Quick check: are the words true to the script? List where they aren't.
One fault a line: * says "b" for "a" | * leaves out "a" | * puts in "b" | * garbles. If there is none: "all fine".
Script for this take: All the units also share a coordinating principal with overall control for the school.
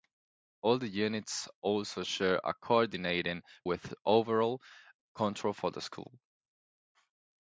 * leaves out "principal"